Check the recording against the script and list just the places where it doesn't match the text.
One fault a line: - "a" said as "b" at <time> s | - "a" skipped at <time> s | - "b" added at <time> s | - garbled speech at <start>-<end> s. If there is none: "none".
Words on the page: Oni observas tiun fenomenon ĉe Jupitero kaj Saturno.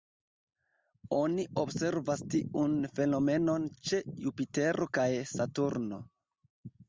none